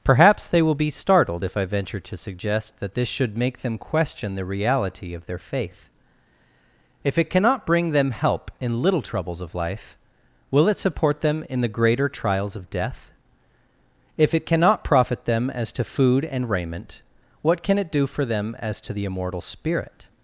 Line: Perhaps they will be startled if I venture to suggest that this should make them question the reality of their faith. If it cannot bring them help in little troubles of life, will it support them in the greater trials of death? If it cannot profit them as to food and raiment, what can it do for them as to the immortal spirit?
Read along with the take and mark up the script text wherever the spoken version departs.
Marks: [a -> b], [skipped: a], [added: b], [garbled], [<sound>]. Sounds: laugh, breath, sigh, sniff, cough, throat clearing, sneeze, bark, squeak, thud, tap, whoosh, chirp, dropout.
Perhaps they will be startled if I venture to suggest that this should make them question the reality of their faith. If it cannot bring them help in little troubles of life, will it support them in the greater trials of death? If it cannot profit them as to food and raiment, what can it do for them as to the immortal spirit?